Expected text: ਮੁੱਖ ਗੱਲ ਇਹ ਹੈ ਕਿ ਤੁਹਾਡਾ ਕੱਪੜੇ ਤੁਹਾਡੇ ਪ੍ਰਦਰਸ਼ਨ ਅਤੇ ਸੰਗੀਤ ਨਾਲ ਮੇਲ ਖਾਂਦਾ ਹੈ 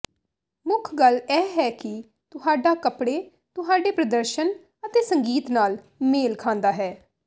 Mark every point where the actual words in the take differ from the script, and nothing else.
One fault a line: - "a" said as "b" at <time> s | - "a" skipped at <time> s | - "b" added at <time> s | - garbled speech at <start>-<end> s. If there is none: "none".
none